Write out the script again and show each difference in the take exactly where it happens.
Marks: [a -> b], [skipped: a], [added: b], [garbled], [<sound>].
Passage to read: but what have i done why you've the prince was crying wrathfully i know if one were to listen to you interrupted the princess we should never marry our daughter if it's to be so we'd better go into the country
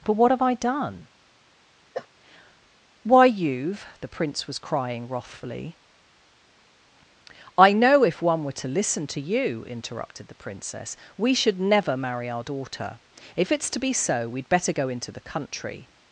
but what have i done [cough] why you've the prince was crying wrathfully i know if one were to listen to you interrupted the princess we should never marry our daughter if it's to be so we'd better go into the country